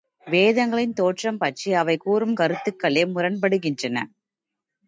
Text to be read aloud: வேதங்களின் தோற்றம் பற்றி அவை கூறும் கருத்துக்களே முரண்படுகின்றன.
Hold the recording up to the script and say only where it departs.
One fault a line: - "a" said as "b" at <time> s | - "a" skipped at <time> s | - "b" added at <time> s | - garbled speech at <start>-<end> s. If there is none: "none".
none